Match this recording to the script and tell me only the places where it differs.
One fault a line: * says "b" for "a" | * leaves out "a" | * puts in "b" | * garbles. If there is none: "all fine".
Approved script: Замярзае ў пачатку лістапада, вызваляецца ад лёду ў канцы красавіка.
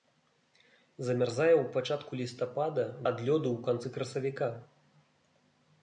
* leaves out "вызваляецца"